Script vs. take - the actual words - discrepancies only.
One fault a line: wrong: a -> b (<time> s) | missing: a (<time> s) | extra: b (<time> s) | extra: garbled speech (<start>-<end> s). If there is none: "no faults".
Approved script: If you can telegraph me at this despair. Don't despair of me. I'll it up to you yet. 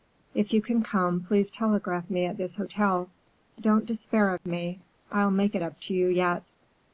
extra: come please (0.8 s)
wrong: despair -> hotel (2.5 s)
extra: make (5.3 s)